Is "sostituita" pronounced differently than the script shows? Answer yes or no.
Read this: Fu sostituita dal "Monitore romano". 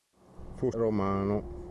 yes